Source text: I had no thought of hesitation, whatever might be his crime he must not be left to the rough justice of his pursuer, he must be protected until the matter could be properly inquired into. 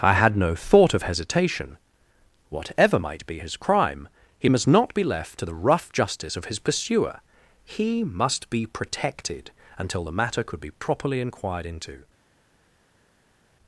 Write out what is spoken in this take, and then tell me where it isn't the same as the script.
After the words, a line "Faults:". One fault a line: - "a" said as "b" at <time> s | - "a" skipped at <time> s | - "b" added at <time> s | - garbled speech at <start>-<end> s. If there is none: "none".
I had no thought of hesitation, whatever might be his crime he must not be left to the rough justice of his pursuer, he must be protected until the matter could be properly inquired into.
Faults:
none